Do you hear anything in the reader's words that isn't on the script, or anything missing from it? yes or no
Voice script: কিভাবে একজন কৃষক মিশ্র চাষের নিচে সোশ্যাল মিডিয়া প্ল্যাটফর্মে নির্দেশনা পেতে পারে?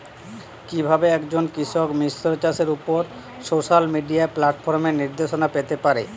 yes